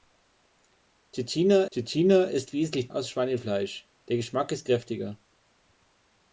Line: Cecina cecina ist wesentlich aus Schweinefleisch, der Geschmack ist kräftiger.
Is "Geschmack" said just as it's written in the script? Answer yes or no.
yes